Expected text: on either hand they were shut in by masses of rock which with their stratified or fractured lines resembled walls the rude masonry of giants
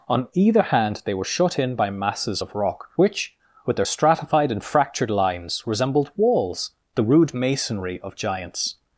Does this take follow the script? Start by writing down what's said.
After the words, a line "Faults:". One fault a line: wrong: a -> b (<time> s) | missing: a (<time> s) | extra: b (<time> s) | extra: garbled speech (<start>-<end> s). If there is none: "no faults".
on either hand they were shut in by masses of rock which with their stratified and fractured lines resembled walls the rude masonry of giants
Faults:
wrong: or -> and (4.5 s)